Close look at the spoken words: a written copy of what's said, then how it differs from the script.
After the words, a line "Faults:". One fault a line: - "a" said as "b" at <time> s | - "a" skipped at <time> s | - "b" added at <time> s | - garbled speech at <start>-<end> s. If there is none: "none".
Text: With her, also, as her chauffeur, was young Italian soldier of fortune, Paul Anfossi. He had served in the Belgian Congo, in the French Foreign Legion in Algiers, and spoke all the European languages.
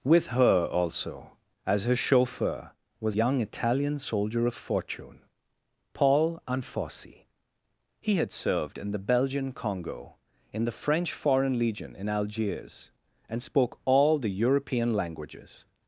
With her, also, as her chauffeur, was young Italian soldier of fortune, Paul Anfossi. He had served in the Belgian Congo, in the French Foreign Legion in Algiers, and spoke all the European languages.
Faults:
none